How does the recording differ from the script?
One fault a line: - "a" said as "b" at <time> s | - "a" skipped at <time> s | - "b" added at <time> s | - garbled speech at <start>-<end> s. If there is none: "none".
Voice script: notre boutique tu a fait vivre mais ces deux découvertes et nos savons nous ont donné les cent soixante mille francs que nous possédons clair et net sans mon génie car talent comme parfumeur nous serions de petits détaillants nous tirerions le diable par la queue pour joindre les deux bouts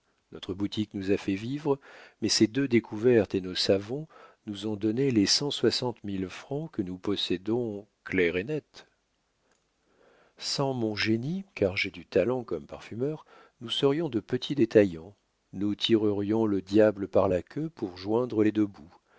- "tu" said as "nous" at 0.9 s
- "j'ai du" added at 11.8 s